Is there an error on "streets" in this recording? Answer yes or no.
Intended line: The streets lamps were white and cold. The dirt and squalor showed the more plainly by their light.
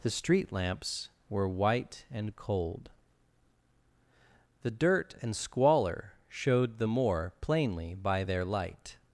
yes